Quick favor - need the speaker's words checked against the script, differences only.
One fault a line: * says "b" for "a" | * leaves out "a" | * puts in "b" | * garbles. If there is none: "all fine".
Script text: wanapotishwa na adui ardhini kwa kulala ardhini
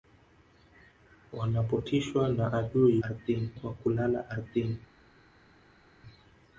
all fine